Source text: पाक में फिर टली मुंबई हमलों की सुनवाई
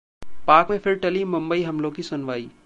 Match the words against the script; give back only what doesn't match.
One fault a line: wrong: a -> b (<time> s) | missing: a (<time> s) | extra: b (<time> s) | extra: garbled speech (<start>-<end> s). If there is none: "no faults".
no faults